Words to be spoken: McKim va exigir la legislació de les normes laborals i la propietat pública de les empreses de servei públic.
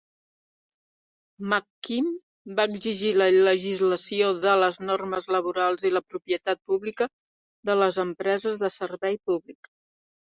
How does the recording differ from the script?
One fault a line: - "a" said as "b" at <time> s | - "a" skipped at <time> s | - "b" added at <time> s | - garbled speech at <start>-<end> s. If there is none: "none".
none